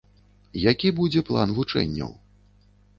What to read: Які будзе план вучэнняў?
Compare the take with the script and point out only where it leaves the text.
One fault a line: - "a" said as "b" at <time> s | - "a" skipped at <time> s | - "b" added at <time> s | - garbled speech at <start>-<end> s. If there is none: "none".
none